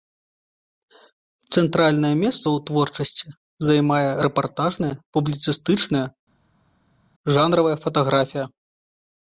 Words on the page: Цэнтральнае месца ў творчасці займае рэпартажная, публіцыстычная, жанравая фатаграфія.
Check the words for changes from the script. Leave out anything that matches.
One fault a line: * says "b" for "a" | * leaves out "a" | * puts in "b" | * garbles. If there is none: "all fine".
all fine